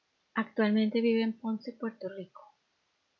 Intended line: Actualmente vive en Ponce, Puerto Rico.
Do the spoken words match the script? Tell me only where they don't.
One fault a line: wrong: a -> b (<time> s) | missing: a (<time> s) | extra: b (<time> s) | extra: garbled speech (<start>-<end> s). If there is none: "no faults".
no faults